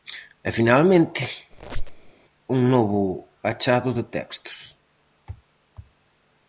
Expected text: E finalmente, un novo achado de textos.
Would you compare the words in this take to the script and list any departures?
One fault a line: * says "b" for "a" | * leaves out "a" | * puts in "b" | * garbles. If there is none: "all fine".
all fine